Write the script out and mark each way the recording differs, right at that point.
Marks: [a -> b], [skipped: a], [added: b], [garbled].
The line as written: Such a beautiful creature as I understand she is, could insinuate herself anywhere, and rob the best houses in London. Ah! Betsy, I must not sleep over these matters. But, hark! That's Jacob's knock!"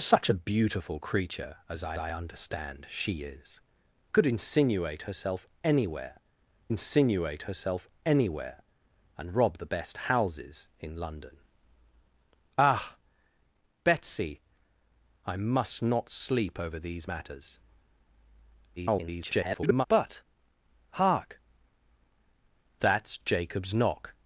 Such a beautiful creature as I [added: I] understand she is, could insinuate herself anywhere, [added: insinuate herself anywhere] and rob the best houses in London. Ah! Betsy, I must not sleep over these matters. [garbled] But, hark! That's Jacob's knock!"